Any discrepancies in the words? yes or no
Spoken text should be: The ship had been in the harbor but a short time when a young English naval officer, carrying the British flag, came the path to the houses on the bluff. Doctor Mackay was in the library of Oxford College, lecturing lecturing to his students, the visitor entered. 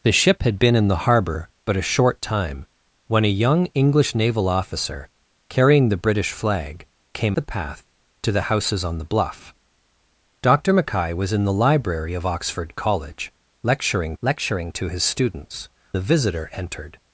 no